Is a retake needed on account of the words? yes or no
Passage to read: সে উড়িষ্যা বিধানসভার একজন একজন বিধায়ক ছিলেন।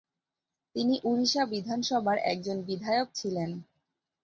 yes